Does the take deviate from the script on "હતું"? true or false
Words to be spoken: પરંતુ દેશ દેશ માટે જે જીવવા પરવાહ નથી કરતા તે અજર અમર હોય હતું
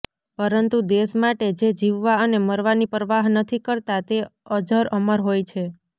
true